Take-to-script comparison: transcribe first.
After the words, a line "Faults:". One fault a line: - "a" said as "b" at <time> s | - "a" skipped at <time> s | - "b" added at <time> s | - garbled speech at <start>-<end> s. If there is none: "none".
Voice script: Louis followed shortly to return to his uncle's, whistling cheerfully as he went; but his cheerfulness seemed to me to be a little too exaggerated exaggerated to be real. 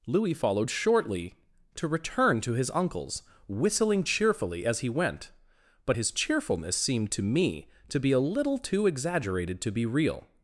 Louis followed shortly to return to his uncle's, whistling cheerfully as he went; but his cheerfulness seemed to me to be a little too exaggerated to be real.
Faults:
- "exaggerated" skipped at 9.6 s